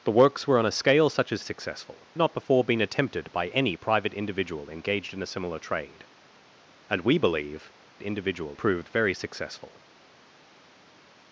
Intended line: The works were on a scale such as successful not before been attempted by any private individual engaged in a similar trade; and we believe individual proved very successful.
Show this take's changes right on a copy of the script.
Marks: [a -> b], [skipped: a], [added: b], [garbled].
The works were on a scale such as successful not before been attempted by any private individual engaged in a similar trade; and we believe individual proved very successful.